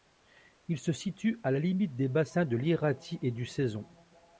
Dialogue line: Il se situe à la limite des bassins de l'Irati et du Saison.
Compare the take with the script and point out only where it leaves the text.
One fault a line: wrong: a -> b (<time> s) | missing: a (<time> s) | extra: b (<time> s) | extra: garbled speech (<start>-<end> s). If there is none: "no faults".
no faults